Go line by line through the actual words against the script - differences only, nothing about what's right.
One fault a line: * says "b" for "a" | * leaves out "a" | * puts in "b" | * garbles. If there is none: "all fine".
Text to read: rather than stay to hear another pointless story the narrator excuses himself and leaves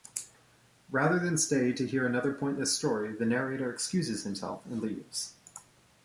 all fine